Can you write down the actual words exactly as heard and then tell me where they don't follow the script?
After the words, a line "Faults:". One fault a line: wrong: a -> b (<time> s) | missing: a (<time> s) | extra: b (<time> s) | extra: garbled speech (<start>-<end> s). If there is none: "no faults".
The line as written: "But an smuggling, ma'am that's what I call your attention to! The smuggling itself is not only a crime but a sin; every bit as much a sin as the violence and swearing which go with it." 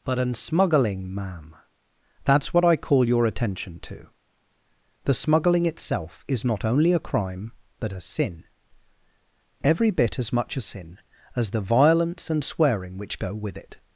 "But an smuggling, ma'am that's what I call your attention to! The smuggling itself is not only a crime but a sin; every bit as much a sin as the violence and swearing which go with it."
Faults:
no faults